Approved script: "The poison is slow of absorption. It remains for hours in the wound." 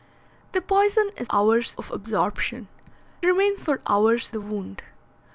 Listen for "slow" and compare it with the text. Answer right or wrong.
wrong